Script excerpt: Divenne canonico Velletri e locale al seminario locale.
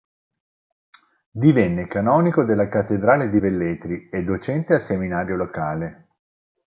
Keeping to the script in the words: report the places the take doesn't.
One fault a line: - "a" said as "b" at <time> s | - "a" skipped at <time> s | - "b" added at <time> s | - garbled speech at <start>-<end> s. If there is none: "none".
- "della cattedrale di" added at 2.4 s
- "locale" said as "docente" at 4.2 s